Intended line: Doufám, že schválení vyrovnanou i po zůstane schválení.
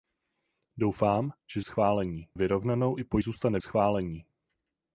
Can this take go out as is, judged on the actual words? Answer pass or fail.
pass